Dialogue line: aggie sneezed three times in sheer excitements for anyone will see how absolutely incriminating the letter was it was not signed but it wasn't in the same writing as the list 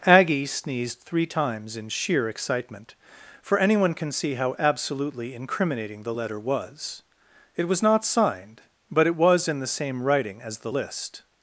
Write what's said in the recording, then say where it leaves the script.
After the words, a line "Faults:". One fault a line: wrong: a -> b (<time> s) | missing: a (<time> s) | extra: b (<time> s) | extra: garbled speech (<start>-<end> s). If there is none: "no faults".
aggie sneezed three times in sheer excitement for anyone can see how absolutely incriminating the letter was it was not signed but it was in the same writing as the list
Faults:
wrong: excitements -> excitement (2.3 s)
wrong: will -> can (3.9 s)
wrong: wasn't -> was (9.2 s)